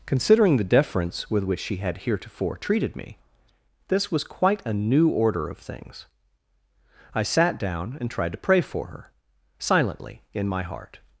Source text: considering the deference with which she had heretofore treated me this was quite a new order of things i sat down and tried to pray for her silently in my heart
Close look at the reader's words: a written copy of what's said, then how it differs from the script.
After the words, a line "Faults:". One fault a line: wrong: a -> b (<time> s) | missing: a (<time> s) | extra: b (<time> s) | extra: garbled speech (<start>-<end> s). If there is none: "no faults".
considering the deference with which she had heretofore treated me this was quite a new order of things i sat down and tried to pray for her silently in my heart
Faults:
no faults